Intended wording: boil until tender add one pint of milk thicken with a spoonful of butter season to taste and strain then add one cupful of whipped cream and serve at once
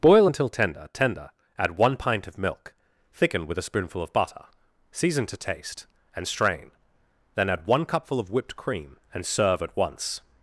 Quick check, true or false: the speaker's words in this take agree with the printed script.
false